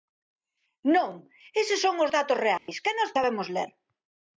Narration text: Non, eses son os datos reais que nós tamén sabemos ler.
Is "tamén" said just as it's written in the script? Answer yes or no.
no